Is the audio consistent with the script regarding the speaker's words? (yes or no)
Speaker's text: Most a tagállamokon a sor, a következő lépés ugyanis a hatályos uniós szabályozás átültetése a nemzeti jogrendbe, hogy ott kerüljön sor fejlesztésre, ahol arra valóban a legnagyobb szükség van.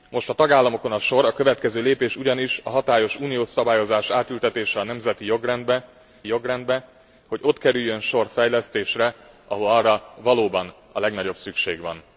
no